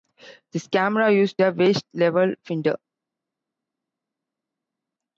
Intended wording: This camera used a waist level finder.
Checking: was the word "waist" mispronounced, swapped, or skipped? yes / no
no